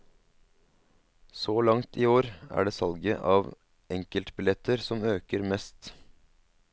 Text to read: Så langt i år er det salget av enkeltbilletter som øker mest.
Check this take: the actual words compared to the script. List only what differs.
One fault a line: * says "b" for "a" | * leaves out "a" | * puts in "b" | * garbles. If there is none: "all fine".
all fine